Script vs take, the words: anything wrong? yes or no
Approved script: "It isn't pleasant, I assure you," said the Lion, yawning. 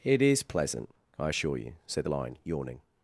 yes